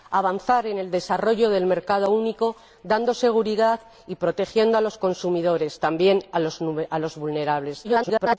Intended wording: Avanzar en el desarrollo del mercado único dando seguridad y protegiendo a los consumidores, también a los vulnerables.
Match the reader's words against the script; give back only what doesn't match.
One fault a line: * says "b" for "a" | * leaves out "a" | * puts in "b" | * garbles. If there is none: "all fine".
* garbles